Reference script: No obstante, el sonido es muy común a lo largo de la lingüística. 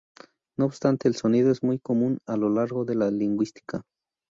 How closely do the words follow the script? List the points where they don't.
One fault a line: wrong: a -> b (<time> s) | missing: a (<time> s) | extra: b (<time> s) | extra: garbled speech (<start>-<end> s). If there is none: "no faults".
no faults